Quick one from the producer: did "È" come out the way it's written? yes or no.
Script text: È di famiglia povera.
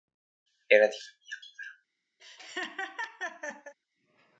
no